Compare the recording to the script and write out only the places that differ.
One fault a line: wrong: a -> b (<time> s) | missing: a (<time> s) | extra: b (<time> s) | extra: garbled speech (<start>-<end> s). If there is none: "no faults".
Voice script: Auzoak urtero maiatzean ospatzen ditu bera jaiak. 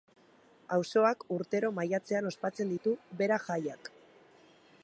no faults